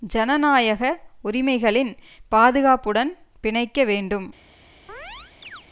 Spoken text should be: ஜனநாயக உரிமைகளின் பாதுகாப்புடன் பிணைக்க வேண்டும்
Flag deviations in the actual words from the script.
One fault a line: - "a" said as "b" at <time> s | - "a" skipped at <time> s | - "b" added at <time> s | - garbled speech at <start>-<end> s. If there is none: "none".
none